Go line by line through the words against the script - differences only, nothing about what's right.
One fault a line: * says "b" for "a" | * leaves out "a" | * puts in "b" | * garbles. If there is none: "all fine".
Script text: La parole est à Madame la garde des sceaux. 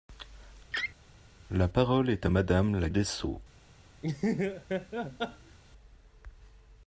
* leaves out "garde"